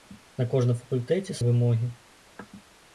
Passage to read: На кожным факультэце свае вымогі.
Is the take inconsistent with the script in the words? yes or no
yes